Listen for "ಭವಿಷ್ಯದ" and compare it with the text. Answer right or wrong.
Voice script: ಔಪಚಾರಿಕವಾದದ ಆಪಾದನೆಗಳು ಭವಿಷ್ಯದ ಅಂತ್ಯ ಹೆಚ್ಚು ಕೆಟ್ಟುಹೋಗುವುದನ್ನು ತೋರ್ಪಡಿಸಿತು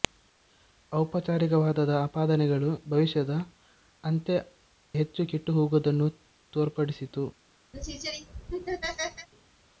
right